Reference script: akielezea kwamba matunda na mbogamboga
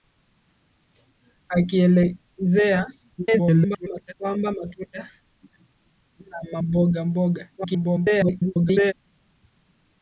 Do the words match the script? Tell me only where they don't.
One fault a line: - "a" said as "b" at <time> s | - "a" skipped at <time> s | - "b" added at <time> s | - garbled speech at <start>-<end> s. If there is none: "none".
- garbled speech at 3.2-4.1 s
- garbled speech at 7.6-8.9 s